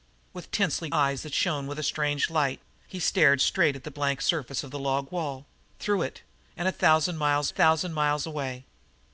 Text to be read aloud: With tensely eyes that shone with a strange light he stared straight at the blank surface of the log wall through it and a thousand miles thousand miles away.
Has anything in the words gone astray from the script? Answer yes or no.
no